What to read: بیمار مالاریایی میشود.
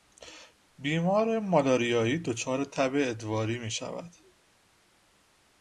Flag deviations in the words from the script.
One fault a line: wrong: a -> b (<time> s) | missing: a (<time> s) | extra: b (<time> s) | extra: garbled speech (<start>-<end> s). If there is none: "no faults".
extra: دچار تب ادواری (2.2 s)